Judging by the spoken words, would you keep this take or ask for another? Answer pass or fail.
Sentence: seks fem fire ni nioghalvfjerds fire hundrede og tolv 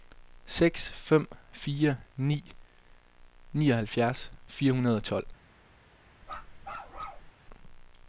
pass